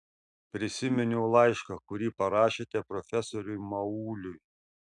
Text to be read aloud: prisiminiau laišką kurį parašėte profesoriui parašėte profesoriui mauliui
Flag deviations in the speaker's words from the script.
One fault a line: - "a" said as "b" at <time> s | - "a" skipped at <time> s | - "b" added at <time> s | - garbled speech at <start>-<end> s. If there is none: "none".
- "parašėte profesoriui" skipped at 3.6 s